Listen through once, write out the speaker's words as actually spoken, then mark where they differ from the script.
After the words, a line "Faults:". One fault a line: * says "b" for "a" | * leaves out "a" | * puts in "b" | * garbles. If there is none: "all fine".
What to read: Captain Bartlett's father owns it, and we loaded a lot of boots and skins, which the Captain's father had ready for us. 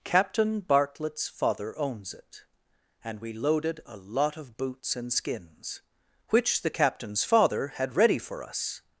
Captain Bartlett's father owns it, and we loaded a lot of boots and skins, which the Captain's father had ready for us.
Faults:
all fine